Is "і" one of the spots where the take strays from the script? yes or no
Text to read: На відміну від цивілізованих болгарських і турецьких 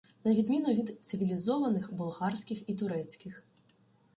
no